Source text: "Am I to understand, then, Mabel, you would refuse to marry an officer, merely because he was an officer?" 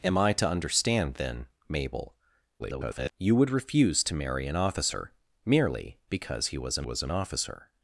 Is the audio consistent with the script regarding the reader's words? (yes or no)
no